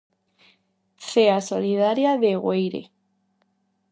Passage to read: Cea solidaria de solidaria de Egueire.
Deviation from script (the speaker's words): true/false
true